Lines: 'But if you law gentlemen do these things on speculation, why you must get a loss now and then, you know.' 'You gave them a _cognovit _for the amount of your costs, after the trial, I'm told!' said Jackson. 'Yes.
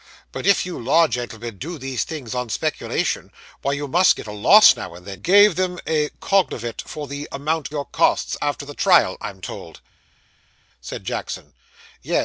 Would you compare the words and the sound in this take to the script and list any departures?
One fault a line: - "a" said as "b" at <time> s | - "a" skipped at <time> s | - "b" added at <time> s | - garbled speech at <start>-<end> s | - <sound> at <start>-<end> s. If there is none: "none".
- "you know You" skipped at 5.2 s
- "of" skipped at 7.7 s